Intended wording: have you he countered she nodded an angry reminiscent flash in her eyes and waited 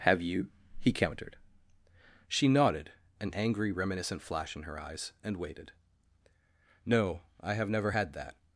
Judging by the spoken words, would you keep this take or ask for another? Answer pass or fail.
fail